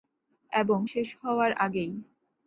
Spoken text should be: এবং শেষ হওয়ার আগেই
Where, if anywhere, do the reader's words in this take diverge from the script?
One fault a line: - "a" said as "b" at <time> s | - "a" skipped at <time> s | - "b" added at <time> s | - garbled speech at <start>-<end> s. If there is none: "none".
none